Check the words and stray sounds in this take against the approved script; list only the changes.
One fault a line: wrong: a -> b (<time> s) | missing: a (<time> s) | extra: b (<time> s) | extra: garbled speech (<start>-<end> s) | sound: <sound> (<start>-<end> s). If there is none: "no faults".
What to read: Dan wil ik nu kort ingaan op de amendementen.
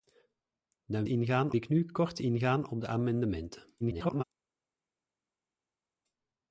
wrong: wil -> ingaan (1.1 s)
extra: garbled speech (3.8-4.2 s)